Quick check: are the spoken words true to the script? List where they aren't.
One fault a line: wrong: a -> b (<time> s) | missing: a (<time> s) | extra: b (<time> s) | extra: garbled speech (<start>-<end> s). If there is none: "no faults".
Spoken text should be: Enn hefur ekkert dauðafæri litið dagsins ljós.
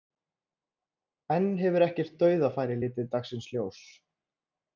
no faults